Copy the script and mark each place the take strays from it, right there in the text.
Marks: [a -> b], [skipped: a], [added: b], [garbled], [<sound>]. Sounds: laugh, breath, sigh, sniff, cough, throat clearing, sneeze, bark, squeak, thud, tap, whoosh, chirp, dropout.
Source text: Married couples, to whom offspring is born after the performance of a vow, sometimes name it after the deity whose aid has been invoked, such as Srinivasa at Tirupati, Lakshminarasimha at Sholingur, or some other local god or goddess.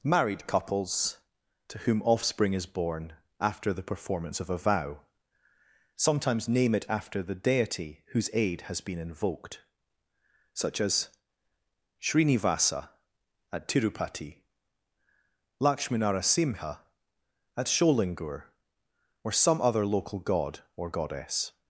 Married couples, to whom offspring is born after the performance of a vow, sometimes name it after the deity whose aid has been invoked, such as Srinivasa at Tirupati, Lakshminarasimha at Sholingur, or some other local god or goddess.